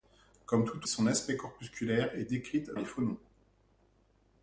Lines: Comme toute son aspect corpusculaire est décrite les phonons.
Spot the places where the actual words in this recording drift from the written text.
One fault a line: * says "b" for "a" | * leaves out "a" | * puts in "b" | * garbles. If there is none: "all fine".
all fine